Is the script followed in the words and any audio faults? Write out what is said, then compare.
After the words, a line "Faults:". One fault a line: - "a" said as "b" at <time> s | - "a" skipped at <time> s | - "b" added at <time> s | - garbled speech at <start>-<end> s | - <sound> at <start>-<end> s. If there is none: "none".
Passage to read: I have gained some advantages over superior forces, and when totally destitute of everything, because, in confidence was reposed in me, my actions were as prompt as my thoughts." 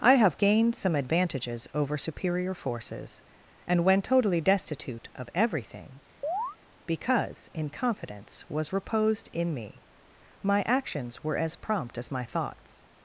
I have gained some advantages over superior forces, and when totally destitute of everything, because, in confidence was reposed in me, my actions were as prompt as my thoughts."
Faults:
- chirp at 6.2-6.6 s